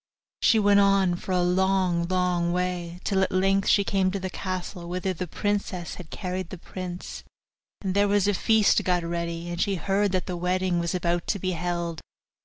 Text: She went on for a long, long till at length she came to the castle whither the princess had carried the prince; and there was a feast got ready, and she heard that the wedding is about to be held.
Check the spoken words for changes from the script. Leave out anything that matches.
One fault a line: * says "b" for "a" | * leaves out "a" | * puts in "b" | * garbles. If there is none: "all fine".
* puts in "way"
* says "was" for "is"